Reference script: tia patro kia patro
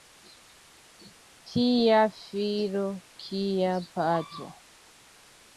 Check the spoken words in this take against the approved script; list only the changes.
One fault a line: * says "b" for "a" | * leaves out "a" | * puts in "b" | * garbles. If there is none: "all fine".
* says "filo" for "patro"